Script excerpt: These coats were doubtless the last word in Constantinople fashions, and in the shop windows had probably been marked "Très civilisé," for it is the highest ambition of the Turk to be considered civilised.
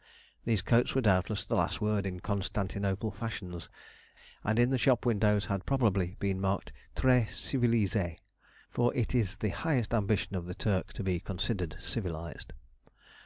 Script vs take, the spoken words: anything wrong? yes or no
no